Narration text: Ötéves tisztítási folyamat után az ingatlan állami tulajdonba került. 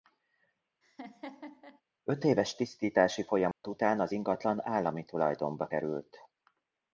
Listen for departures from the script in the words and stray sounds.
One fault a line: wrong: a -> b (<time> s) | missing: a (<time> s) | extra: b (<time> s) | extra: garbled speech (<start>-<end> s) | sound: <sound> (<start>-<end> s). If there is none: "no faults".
sound: laugh (0.8-1.8 s)
sound: dropout (3.5-3.6 s)